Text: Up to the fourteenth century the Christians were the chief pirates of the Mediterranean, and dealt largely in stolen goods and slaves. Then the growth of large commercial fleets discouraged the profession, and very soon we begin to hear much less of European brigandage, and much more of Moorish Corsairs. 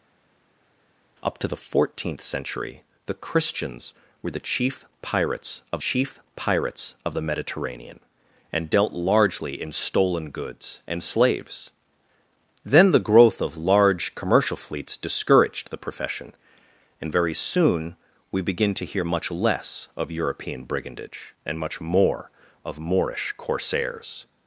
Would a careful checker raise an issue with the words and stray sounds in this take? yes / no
yes